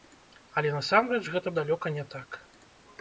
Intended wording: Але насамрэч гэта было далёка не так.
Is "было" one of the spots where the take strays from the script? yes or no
yes